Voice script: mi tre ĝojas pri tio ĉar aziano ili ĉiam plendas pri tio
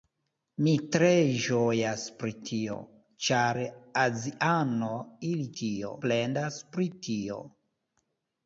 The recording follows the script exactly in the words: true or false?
false